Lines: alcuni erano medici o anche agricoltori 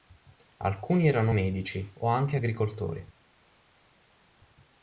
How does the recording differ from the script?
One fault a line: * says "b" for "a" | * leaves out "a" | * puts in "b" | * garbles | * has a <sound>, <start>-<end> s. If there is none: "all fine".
all fine